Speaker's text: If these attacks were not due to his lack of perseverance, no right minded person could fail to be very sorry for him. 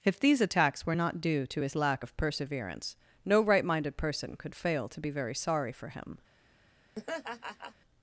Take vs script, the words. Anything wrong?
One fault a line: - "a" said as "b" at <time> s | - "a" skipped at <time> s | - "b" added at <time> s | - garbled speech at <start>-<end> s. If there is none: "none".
none